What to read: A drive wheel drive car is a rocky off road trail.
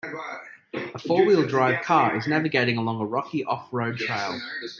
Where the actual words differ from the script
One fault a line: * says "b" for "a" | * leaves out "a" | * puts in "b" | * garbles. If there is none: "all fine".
* says "four" for "drive"
* puts in "navigating along"